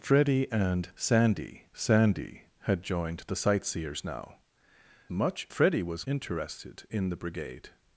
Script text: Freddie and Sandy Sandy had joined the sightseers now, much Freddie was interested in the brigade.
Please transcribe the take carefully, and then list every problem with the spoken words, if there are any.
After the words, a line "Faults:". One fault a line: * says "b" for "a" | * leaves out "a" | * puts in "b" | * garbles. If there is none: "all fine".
Freddie and Sandy Sandy had joined the sightseers now, much Freddie was interested in the brigade.
Faults:
all fine